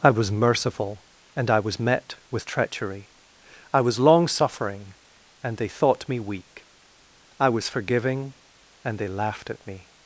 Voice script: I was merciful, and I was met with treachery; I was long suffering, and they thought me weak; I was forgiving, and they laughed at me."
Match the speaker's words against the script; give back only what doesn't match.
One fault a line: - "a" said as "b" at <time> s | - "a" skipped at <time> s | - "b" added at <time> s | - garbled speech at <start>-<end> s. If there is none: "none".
none